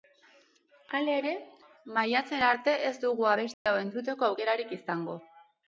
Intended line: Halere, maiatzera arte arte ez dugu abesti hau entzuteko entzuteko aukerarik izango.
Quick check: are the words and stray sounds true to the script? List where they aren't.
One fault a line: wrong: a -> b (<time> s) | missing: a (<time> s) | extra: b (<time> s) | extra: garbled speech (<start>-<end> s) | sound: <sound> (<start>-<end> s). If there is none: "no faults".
missing: arte (2.8 s)
sound: dropout (3.5-3.7 s)
missing: entzuteko (4.3 s)